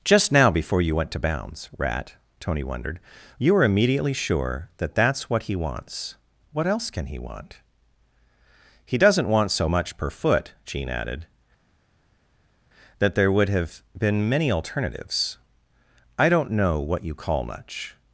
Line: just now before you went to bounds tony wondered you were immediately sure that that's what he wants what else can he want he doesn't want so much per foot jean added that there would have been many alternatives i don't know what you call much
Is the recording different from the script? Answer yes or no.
yes